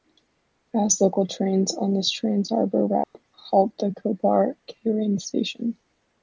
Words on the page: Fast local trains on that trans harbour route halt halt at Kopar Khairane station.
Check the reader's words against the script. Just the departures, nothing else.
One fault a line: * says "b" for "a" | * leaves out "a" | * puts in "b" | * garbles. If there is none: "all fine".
* says "this" for "that"
* leaves out "halt"